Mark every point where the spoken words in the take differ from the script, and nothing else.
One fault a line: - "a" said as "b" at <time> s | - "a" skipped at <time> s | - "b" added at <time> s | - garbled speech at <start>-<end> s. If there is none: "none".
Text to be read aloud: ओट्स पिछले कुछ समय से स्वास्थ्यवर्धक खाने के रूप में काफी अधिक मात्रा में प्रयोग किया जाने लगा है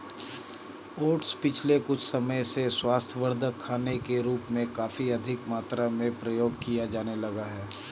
none